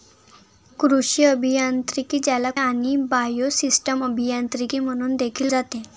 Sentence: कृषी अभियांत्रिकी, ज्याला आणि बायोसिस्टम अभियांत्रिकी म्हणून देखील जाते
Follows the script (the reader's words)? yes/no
yes